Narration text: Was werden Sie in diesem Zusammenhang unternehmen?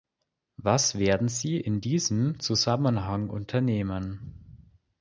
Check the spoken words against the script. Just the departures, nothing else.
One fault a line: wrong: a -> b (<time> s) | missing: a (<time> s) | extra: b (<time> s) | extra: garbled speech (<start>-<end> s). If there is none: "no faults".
no faults